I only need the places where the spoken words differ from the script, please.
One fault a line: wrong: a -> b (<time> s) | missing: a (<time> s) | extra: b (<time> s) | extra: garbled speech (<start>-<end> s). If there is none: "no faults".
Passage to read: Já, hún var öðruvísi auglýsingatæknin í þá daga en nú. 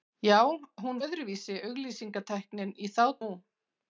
missing: var (1.0 s)
missing: daga en (3.0 s)